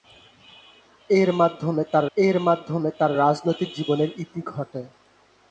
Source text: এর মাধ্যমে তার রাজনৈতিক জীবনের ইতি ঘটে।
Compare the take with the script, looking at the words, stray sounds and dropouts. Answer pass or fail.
fail